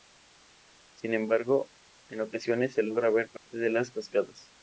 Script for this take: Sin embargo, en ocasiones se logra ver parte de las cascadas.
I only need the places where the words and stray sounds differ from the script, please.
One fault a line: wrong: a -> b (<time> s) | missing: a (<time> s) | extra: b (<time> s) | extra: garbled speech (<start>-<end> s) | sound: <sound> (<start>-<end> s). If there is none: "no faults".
sound: dropout (3.4-3.5 s)